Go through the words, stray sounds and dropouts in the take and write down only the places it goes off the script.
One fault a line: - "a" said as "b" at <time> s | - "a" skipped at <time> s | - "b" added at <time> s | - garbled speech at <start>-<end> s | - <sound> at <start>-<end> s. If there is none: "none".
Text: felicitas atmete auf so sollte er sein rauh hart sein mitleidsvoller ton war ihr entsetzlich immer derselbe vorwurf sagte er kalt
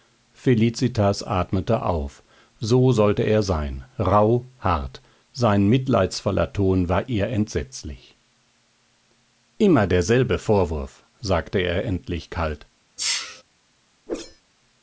- "endlich" added at 11.8 s
- sneeze at 13.0-13.4 s
- whoosh at 14.1-14.4 s